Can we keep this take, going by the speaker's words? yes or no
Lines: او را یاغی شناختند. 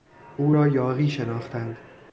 yes